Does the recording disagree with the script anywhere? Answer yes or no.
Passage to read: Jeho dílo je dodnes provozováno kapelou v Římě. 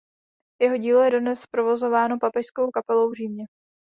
yes